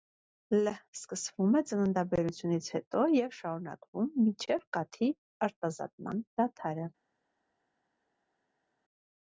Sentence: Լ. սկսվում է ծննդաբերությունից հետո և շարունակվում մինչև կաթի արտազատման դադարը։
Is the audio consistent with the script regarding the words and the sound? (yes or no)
yes